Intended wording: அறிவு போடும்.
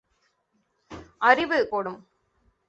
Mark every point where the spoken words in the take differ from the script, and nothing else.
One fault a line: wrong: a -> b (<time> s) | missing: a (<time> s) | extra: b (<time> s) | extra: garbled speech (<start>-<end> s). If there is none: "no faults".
no faults